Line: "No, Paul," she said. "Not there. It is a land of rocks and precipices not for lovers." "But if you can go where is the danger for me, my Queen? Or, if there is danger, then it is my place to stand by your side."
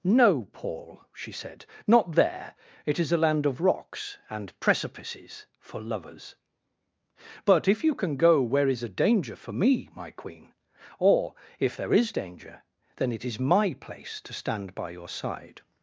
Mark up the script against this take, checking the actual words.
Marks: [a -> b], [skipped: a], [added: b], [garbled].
"No, Paul," she said. "Not there. It is a land of rocks and precipices [skipped: not] for lovers." "But if you can go where is [the -> a] danger for me, my Queen? Or, if there is danger, then it is my place to stand by your side."